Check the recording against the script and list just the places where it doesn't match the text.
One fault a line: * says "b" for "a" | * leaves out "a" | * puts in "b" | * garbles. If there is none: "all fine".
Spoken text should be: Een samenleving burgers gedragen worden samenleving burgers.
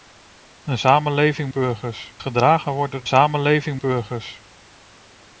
all fine